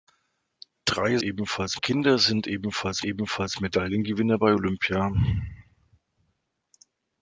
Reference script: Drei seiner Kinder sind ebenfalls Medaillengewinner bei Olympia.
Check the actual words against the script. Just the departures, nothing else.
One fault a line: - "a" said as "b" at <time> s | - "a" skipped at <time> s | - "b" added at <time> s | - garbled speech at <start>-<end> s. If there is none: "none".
- "seiner" said as "ebenfalls" at 1.2 s
- "ebenfalls" added at 3.0 s